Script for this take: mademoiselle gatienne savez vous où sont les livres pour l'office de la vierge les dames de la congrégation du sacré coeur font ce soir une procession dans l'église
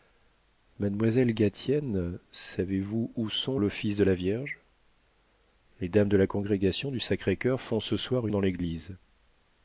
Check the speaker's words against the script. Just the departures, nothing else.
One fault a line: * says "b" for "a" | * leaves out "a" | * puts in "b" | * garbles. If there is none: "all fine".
* leaves out "les livres pour"
* leaves out "une procession"